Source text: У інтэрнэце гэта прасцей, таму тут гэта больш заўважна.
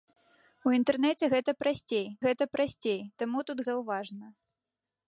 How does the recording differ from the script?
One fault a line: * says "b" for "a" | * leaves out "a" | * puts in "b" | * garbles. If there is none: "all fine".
* puts in "гэта прасцей"
* leaves out "гэта больш"